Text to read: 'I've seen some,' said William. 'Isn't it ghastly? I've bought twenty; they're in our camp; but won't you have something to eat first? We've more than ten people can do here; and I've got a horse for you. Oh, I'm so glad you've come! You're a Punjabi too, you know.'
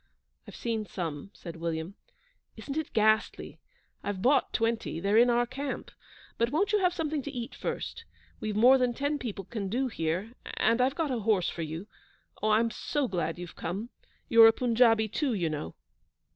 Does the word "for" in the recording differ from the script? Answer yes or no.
no